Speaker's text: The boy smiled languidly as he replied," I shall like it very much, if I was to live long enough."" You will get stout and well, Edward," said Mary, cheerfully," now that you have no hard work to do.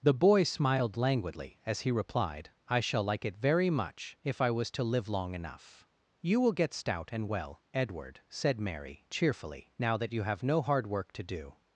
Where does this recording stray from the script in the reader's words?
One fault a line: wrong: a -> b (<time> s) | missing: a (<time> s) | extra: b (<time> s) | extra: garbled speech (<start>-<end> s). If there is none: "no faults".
no faults